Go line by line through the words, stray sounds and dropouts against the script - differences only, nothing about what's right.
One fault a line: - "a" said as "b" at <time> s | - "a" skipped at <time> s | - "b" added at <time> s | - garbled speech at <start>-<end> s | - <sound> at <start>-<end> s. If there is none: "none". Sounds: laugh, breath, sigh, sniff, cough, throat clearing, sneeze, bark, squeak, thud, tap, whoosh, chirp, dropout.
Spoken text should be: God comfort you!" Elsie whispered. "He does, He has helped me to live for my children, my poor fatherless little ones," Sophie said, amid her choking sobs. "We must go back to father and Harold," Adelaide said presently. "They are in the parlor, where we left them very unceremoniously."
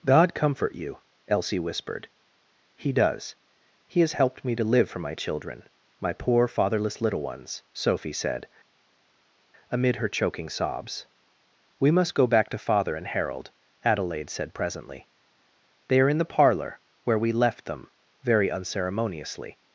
none